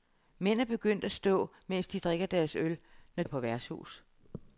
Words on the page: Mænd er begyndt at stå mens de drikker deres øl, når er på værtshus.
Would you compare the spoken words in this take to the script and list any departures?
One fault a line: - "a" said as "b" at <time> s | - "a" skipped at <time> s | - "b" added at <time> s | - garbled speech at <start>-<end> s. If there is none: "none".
none